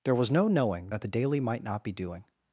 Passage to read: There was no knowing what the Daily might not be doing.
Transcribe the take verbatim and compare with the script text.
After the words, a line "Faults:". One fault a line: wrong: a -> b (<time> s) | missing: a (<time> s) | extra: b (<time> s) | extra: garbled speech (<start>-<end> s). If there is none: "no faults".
There was no knowing that the Daily might not be doing.
Faults:
wrong: what -> that (0.9 s)